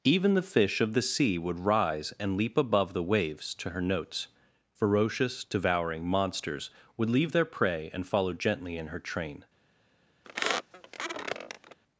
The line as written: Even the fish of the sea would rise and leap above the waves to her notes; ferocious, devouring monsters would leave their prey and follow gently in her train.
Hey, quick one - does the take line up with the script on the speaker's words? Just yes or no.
yes